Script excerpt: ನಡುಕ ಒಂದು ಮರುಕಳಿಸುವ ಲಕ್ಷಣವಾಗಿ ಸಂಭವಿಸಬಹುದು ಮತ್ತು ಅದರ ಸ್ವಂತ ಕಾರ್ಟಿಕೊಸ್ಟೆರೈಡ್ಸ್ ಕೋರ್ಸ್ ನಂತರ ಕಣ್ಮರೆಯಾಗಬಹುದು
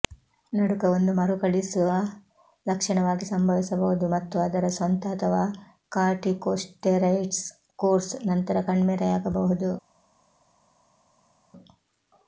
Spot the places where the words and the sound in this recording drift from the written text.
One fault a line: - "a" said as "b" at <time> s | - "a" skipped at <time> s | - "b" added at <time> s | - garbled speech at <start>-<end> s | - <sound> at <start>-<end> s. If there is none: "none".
- "ಅಥವಾ" added at 5.1 s